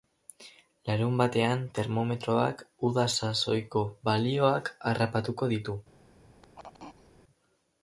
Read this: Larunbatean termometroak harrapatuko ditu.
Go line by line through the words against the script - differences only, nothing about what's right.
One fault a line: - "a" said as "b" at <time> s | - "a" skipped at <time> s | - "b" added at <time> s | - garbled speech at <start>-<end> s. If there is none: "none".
- "uda sasoiko balioak" added at 2.9 s